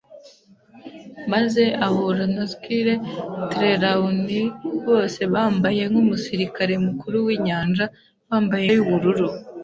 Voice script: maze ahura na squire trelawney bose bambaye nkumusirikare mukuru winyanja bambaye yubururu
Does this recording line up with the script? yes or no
yes